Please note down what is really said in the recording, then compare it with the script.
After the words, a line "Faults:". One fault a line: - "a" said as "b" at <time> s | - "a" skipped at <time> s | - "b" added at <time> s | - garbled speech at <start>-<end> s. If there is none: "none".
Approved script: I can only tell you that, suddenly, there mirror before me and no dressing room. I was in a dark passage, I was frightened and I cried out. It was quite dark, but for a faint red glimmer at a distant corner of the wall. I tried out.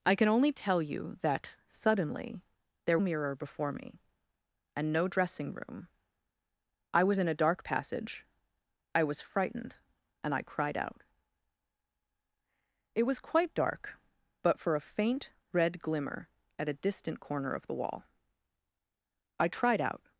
I can only tell you that, suddenly, there mirror before me and no dressing room. I was in a dark passage, I was frightened and I cried out. It was quite dark, but for a faint red glimmer at a distant corner of the wall. I tried out.
Faults:
none